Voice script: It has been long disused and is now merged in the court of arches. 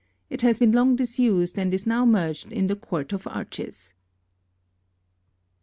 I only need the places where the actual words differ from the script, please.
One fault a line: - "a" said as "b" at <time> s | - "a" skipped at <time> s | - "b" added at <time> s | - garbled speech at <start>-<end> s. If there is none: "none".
none